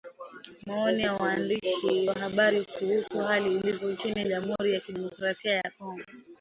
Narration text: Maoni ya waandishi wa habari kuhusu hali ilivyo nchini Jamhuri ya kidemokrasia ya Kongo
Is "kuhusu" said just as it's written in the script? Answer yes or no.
yes